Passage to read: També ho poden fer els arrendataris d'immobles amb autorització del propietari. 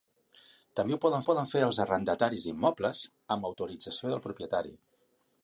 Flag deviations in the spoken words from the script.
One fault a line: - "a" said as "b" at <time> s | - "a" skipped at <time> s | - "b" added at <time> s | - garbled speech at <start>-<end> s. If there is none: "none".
- "poden" added at 1.3 s